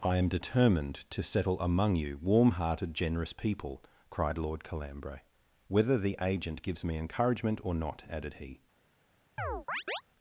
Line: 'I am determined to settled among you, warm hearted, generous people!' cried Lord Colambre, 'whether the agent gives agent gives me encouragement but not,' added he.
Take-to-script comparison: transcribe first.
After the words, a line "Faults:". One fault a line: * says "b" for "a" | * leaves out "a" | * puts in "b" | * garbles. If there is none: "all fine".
'I am determined to settle among you, warm hearted, generous people!' cried Lord Colambre, 'whether the agent gives me encouragement or not,' added he.
Faults:
* says "settle" for "settled"
* leaves out "agent gives"
* says "or" for "but"